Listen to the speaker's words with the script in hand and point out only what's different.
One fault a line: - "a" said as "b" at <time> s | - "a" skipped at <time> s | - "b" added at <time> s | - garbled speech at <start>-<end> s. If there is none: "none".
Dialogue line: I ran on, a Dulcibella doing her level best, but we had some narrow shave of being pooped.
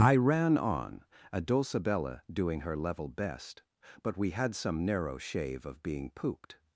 none